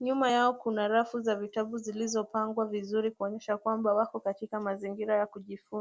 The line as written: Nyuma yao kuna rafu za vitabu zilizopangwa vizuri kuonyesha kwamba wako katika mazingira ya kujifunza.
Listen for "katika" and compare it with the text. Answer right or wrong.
right